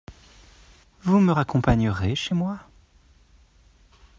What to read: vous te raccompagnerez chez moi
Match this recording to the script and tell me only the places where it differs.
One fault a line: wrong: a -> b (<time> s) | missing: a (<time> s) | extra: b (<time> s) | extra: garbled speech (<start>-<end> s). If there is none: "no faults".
wrong: te -> me (1.2 s)